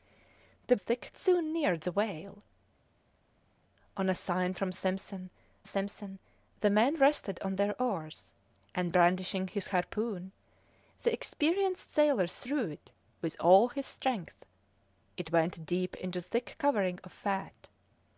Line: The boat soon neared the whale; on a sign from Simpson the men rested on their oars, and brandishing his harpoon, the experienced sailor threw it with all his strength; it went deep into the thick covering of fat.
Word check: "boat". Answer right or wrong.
wrong